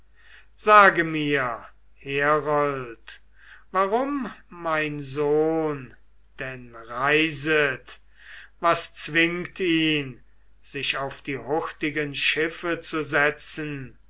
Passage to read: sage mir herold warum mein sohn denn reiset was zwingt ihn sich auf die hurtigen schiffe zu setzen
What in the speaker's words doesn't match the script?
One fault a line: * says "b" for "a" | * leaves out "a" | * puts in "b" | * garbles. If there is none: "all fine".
all fine